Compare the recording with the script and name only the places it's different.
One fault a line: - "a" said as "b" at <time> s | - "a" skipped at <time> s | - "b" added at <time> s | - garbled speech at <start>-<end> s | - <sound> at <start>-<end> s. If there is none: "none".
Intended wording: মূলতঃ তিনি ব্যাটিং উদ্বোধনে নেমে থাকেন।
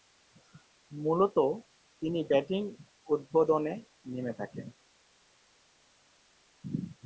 none